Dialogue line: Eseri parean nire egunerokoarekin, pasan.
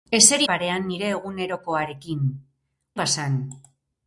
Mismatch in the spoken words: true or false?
false